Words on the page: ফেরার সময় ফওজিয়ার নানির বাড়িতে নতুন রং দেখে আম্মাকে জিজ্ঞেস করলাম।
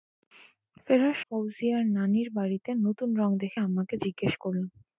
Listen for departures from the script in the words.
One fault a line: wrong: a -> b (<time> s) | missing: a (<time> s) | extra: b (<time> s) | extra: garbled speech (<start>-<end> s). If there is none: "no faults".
missing: সময় (1.2 s)